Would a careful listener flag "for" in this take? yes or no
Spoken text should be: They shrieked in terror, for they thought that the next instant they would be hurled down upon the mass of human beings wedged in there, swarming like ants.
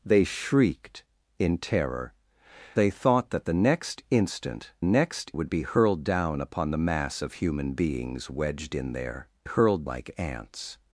yes